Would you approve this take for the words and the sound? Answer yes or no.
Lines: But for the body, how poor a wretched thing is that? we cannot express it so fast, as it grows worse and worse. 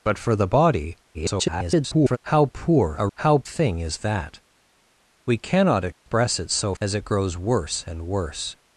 no